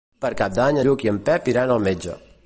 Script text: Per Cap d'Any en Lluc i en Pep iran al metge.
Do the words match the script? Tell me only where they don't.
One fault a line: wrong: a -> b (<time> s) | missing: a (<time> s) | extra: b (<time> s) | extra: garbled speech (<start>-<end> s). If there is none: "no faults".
missing: en (0.8 s)